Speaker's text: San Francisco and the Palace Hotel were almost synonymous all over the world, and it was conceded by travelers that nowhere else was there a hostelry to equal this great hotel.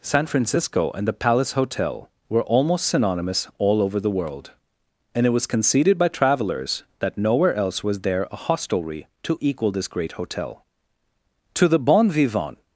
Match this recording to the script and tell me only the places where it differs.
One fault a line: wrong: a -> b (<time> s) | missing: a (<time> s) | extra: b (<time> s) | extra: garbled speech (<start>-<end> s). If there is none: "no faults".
extra: To the bon vivant (11.5 s)